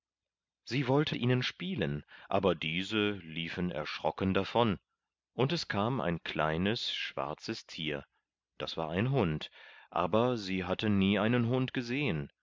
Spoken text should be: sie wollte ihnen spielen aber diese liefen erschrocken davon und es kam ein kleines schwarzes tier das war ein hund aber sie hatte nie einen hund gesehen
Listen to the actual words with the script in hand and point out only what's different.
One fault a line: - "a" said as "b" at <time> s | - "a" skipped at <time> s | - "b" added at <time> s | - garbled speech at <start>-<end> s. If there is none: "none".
none